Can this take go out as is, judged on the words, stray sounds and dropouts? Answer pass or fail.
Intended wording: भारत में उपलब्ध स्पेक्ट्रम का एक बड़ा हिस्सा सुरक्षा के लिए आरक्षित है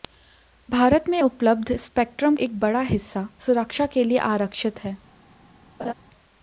fail